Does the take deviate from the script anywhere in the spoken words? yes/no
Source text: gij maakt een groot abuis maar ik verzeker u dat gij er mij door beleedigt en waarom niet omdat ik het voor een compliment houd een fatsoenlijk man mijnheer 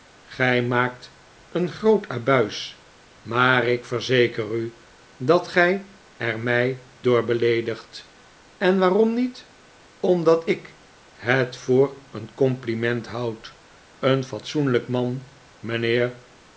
no